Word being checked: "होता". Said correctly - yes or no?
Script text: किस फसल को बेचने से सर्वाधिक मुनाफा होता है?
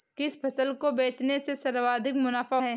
no